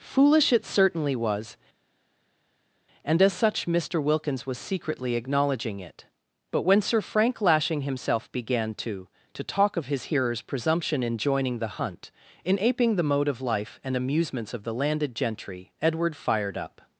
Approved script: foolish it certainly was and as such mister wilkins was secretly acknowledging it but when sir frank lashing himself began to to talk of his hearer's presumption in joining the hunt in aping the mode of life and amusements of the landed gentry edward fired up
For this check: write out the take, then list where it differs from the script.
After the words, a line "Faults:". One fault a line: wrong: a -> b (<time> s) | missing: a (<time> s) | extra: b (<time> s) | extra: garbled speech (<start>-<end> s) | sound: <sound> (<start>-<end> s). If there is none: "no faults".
foolish it certainly was and as such mister wilkins was secretly acknowledging it but when sir frank lashing himself began to to talk of his hearer's presumption in joining the hunt in aping the mode of life and amusements of the landed gentry edward fired up
Faults:
no faults